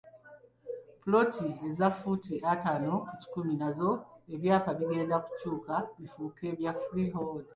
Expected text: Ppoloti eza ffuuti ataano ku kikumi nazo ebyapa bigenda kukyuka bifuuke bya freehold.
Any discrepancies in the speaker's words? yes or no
no